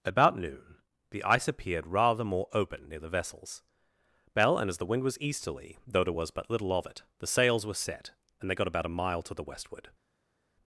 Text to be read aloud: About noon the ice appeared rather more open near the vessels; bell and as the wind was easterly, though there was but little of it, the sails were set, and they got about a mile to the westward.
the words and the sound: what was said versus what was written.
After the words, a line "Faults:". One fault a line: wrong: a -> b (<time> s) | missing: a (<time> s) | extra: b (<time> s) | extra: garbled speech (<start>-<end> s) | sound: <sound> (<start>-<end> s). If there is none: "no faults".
About noon the ice appeared rather more open near the vessels; bell and as the wind was easterly, though there was but little of it, the sails were set, and they got about a mile to the westward.
Faults:
no faults